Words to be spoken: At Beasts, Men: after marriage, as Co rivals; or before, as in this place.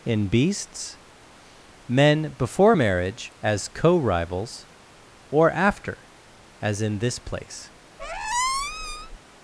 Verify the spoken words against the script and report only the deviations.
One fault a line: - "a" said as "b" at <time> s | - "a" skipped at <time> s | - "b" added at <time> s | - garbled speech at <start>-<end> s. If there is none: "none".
- "At" said as "In" at 0.0 s
- "after" said as "before" at 2.4 s
- "before" said as "after" at 5.5 s